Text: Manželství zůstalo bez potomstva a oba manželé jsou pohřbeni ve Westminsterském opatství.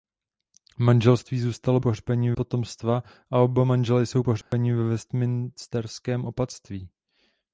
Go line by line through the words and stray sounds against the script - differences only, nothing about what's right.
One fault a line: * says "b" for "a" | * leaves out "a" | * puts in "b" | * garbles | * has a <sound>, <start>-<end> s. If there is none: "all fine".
* says "pohřbeni" for "bez"
* has a dropout, 4.4-4.5 s